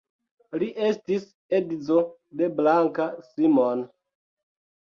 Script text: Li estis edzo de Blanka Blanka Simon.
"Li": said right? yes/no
yes